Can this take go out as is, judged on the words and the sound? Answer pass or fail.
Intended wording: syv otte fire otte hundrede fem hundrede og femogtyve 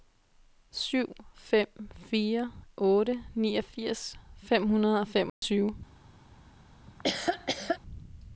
fail